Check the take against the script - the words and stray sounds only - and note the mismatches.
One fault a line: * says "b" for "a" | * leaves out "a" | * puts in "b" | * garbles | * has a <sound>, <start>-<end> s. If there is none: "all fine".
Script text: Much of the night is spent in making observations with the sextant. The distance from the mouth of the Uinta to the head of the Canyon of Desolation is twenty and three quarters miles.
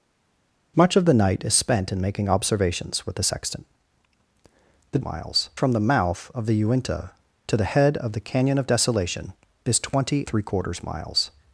* says "miles" for "distance"
* leaves out "and"